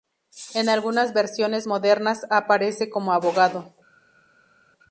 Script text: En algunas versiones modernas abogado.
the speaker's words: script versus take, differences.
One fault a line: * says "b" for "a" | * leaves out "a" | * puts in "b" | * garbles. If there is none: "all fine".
* puts in "aparece como"